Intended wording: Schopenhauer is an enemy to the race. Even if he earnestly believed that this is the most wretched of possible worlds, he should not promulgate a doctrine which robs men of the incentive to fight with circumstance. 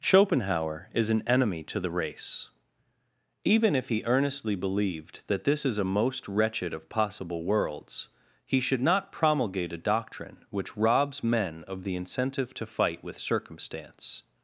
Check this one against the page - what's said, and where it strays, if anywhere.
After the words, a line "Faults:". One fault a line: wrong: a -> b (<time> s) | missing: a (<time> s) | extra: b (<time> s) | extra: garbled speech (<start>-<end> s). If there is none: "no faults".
Schopenhauer is an enemy to the race. Even if he earnestly believed that this is a most wretched of possible worlds, he should not promulgate a doctrine which robs men of the incentive to fight with circumstance.
Faults:
wrong: the -> a (5.8 s)